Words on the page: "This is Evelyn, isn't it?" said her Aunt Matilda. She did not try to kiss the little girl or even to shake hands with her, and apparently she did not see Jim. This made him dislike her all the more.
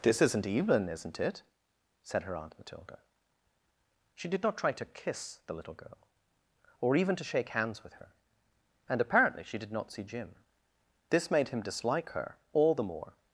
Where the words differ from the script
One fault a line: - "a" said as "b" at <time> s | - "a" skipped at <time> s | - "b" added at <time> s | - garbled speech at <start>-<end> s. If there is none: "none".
- "is" said as "isn't" at 0.2 s